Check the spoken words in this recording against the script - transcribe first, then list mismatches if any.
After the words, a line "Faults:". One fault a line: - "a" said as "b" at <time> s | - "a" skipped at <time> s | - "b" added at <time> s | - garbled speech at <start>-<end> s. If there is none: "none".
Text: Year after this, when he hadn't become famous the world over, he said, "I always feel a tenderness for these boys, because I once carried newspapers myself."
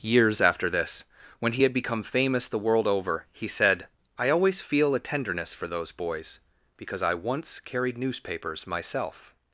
Years after this, when he had become famous the world over, he said, "I always feel a tenderness for those boys, because I once carried newspapers myself."
Faults:
- "Year" said as "Years" at 0.0 s
- "hadn't" said as "had" at 1.6 s
- "these" said as "those" at 5.7 s